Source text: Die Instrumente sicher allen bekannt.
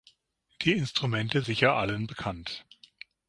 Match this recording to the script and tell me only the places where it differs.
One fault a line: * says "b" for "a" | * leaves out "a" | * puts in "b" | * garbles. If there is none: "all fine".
all fine